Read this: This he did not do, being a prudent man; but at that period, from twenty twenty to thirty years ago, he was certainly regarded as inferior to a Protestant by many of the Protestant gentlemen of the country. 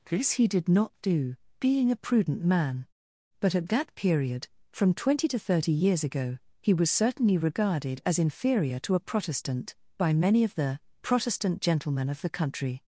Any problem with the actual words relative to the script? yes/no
yes